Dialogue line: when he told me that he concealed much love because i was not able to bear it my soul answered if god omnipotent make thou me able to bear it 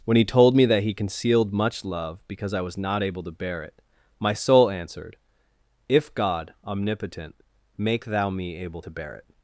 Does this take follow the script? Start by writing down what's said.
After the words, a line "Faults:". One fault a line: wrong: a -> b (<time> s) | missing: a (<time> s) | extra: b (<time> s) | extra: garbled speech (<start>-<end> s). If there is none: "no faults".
when he told me that he concealed much love because i was not able to bear it my soul answered if god omnipotent make thou me able to bear it
Faults:
no faults